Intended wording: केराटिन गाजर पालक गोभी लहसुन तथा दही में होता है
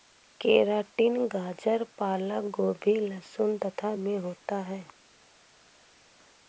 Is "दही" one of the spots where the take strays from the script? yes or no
yes